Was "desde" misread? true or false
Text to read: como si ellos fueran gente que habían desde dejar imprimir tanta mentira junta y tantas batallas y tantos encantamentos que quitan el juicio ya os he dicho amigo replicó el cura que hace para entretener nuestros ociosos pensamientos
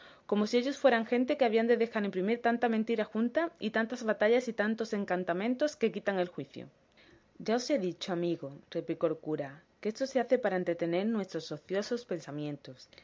true